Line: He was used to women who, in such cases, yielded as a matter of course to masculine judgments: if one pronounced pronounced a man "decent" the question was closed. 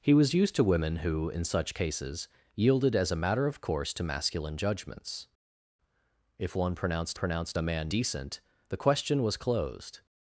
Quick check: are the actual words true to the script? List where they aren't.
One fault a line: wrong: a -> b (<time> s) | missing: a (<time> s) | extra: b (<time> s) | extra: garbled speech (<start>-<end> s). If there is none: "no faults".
no faults